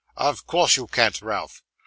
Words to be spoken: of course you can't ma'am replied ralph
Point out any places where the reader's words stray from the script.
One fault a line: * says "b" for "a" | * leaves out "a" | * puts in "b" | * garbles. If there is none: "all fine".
* leaves out "ma'am replied"